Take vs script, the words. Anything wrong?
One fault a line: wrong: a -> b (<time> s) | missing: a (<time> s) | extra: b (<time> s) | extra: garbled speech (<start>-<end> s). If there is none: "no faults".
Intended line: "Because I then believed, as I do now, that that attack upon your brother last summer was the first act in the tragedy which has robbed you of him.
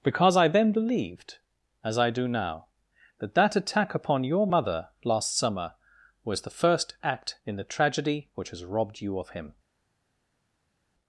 wrong: brother -> mother (4.5 s)